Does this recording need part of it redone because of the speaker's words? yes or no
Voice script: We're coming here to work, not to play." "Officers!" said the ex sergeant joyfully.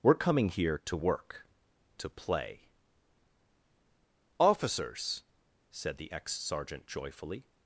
yes